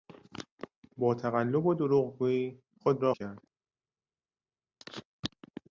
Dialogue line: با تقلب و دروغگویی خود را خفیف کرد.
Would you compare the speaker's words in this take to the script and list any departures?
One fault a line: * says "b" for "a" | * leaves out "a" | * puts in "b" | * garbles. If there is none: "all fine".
* leaves out "خفیف"